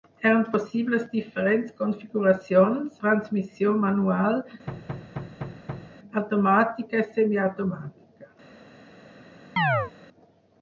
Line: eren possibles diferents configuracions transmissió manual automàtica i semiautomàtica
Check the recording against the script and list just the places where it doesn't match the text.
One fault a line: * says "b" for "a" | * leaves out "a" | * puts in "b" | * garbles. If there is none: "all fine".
all fine